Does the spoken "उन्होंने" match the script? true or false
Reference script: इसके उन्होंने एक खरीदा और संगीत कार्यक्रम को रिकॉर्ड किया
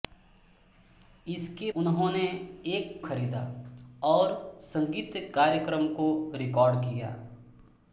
true